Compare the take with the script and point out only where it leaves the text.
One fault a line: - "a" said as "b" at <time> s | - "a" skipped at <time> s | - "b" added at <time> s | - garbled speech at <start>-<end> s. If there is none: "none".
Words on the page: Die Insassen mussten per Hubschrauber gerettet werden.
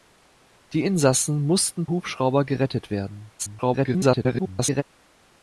- "per" skipped at 1.9 s
- garbled speech at 3.4-4.8 s